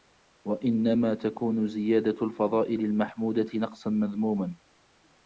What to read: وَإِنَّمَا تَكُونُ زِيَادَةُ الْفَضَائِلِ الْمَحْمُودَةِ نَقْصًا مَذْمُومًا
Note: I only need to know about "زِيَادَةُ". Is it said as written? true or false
true